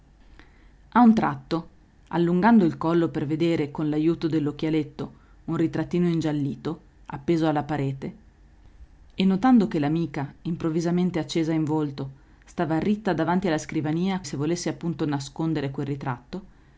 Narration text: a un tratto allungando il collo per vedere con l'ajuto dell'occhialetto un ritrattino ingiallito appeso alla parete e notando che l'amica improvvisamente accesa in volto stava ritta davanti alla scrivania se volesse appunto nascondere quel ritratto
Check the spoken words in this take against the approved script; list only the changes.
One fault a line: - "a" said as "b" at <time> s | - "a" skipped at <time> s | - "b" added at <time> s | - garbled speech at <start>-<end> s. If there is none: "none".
none